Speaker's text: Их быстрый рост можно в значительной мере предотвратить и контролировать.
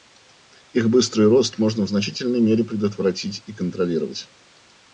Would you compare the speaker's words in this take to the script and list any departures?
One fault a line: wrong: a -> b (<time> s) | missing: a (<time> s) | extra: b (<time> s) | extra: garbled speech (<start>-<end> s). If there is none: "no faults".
no faults